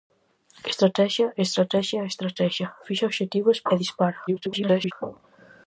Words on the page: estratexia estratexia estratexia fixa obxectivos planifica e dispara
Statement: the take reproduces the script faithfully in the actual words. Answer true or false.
false